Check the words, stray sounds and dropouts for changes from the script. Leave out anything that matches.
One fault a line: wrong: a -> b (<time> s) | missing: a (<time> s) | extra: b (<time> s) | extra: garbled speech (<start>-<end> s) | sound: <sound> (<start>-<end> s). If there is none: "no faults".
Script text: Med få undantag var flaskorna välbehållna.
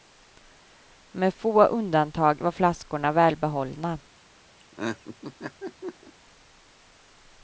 sound: laugh (4.6-6.1 s)